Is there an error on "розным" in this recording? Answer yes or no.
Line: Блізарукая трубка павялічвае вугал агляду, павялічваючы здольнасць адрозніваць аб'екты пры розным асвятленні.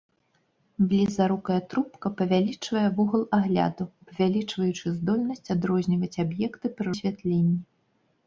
yes